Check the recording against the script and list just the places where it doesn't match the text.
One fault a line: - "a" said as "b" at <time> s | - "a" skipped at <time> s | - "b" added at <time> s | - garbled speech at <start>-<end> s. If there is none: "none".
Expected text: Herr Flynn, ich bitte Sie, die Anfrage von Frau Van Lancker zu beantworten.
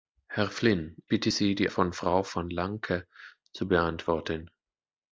- "ich" skipped at 0.9 s
- "Anfrage" skipped at 1.7 s